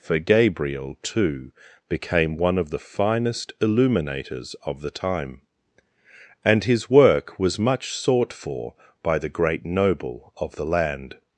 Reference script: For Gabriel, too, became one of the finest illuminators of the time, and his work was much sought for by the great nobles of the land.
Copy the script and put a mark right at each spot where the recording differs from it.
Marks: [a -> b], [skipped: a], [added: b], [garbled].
For Gabriel, too, became one of the finest illuminators of the time, and his work was much sought for by the great [nobles -> noble] of the land.